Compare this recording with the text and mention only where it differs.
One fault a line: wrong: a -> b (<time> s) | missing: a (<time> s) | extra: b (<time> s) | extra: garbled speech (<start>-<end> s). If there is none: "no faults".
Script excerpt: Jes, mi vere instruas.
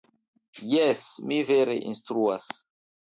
no faults